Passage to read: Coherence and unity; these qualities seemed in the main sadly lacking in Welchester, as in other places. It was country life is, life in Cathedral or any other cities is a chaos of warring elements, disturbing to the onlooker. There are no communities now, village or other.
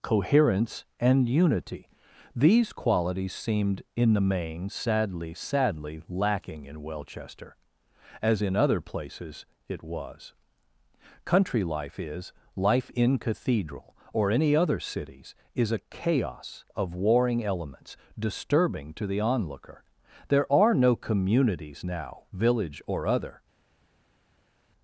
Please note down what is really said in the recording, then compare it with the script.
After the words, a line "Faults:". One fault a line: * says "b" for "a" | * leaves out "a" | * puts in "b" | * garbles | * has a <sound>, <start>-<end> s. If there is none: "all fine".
Coherence and unity; these qualities seemed in the main sadly sadly lacking in Welchester, as in other places. It was country life is, life in Cathedral or any other cities is a chaos of warring elements, disturbing to the onlooker. There are no communities now, village or other.
Faults:
* puts in "sadly"